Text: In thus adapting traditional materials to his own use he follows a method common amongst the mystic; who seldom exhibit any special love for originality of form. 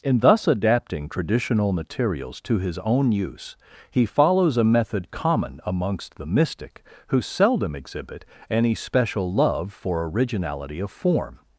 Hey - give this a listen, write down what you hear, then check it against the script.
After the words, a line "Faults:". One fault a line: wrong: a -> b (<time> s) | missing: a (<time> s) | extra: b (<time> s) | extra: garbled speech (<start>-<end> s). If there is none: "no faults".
In thus adapting traditional materials to his own use he follows a method common amongst the mystic; who seldom exhibit any special love for originality of form.
Faults:
no faults